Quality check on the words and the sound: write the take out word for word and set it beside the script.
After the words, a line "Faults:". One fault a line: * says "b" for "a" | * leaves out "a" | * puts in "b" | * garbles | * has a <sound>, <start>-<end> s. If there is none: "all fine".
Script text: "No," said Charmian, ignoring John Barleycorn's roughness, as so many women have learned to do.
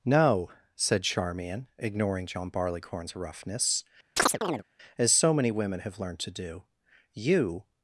"No," said Charmian, ignoring John Barleycorn's roughness, as so many women have learned to do. "You
Faults:
* has a chirp, 4.2-4.6 s
* puts in "You"